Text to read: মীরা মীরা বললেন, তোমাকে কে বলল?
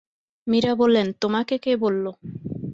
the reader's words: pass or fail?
fail